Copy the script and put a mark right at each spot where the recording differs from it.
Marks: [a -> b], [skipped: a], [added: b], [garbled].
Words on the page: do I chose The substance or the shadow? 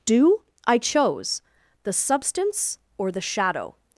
do I chose The substance or the shadow?